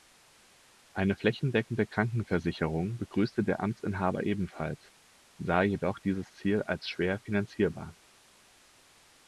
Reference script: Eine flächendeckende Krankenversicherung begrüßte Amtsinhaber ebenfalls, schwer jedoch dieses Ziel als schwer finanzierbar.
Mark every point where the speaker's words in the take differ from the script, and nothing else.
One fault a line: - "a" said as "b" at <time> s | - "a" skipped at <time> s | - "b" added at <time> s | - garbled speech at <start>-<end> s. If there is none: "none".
- "der" added at 3.4 s
- "schwer" said as "sah" at 5.4 s